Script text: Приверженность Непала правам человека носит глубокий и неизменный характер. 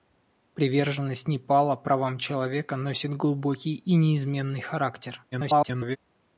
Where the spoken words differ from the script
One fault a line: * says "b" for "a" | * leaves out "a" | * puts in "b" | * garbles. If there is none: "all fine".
* garbles